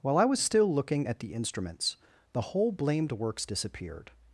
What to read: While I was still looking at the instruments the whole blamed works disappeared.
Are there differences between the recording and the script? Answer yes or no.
no